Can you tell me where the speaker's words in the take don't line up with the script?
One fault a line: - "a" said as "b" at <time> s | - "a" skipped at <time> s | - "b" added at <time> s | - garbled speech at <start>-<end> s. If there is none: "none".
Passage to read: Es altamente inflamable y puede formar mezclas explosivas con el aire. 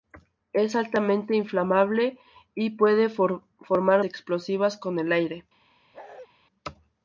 - "mezclas" skipped at 4.0 s